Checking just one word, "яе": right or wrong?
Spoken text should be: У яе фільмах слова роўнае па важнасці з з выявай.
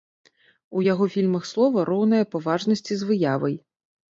wrong